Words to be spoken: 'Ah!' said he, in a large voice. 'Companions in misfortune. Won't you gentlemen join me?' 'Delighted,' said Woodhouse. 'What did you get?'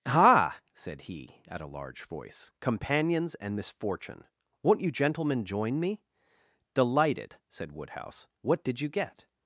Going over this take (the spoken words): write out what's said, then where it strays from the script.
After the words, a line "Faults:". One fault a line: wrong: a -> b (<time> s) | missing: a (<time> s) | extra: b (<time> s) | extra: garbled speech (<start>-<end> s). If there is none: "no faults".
'Ah!' said he, at a large voice. 'Companions and misfortune. Won't you gentlemen join me?' 'Delighted,' said Woodhouse. 'What did you get?'
Faults:
wrong: in -> at (1.5 s)
wrong: in -> and (3.4 s)